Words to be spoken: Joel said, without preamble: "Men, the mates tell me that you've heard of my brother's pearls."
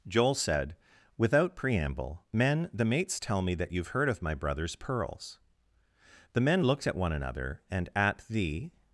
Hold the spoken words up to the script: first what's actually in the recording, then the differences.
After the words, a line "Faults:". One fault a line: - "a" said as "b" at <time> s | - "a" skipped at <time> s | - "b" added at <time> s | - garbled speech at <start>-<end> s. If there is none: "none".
Joel said, without preamble: "Men, the mates tell me that you've heard of my brother's pearls." The men looked at one another, and at the
Faults:
- "The men looked at one another and at the" added at 6.3 s